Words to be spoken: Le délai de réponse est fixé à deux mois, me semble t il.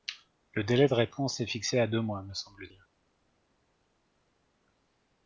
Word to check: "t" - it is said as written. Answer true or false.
false